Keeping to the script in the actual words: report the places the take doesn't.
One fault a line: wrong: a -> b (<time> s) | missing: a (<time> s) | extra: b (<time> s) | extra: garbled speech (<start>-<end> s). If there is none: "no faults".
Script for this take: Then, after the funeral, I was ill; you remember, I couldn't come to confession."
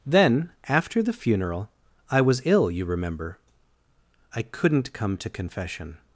no faults